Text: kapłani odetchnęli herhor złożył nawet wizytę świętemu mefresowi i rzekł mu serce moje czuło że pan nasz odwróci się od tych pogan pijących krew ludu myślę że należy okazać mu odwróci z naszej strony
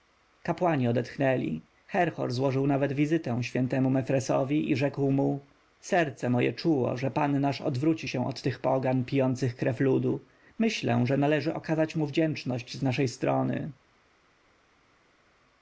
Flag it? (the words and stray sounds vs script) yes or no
yes